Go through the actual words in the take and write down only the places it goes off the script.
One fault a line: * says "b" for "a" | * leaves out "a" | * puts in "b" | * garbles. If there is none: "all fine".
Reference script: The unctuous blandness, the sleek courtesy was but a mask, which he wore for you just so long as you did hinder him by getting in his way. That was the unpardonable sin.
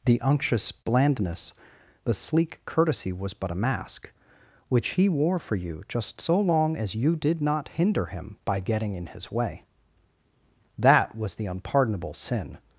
* puts in "not"